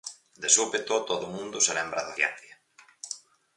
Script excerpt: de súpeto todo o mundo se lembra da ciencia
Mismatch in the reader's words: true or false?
false